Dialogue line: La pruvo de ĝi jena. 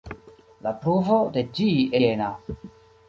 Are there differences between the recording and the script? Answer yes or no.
no